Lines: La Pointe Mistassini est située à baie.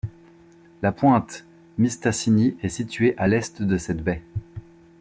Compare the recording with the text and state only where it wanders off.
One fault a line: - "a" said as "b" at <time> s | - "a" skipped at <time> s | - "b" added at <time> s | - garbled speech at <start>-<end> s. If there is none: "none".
- "l'est de cette" added at 3.3 s